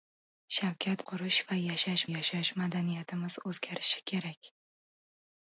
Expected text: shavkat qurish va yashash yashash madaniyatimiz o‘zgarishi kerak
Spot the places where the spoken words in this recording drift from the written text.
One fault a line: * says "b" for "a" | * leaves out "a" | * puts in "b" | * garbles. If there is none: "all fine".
all fine